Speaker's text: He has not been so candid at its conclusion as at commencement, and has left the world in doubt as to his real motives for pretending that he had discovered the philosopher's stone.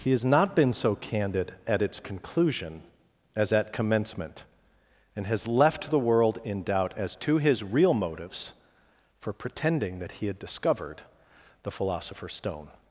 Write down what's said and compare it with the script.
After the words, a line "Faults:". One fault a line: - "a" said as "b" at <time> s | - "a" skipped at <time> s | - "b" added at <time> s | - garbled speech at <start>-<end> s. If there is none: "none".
He has not been so candid at its conclusion as at commencement, and has left the world in doubt as to his real motives for pretending that he had discovered the philosopher's stone.
Faults:
none